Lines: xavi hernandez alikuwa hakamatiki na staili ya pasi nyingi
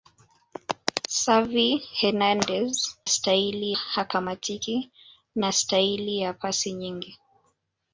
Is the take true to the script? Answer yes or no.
no